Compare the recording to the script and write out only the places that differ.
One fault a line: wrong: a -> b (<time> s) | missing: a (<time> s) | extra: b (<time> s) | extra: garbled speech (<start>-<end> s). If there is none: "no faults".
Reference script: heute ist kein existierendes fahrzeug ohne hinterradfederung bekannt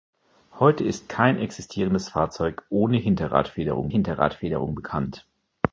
extra: hinterradfederung (3.9 s)